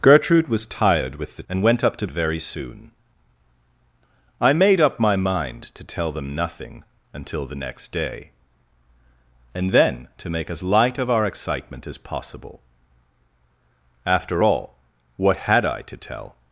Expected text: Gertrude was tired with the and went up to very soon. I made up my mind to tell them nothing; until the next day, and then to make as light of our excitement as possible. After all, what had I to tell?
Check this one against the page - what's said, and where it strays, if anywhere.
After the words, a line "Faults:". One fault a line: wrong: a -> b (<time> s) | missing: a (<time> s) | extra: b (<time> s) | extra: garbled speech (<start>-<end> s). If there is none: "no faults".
Gertrude was tired with the and went up to very soon. I made up my mind to tell them nothing; until the next day, and then to make as light of our excitement as possible. After all, what had I to tell?
Faults:
no faults